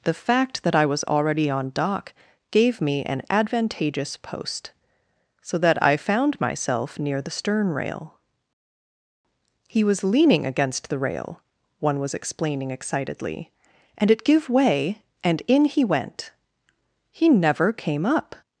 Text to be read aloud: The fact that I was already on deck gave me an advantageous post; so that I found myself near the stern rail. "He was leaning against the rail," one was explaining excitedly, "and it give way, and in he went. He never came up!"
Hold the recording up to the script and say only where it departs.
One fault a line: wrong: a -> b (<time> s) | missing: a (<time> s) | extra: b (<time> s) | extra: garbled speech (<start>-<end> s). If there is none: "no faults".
wrong: deck -> dock (1.7 s)